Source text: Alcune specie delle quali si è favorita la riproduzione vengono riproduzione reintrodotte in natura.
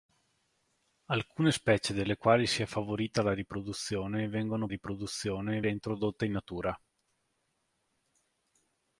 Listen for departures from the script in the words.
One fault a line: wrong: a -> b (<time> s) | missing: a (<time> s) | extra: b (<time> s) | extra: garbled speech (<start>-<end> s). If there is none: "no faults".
no faults